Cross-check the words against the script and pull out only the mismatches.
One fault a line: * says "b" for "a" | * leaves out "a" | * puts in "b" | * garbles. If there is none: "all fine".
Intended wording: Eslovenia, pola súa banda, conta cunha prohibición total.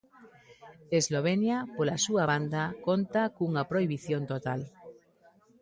all fine